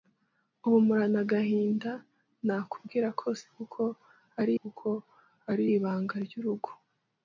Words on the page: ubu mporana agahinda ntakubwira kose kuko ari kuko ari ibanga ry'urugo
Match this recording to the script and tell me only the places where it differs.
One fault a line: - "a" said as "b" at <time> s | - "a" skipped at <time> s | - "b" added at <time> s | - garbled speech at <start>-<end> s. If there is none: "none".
none